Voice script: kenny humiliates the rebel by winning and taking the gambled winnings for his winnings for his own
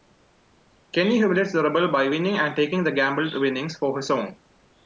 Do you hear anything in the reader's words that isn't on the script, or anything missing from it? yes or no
yes